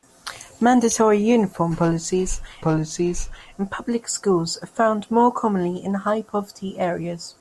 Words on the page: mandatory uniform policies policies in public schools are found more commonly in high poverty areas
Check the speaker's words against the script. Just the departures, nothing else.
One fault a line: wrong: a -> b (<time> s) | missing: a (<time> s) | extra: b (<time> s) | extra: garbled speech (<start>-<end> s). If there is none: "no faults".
no faults